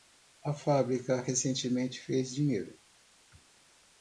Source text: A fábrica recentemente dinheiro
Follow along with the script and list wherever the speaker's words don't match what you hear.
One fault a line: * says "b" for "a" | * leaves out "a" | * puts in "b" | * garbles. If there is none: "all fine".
* puts in "fez"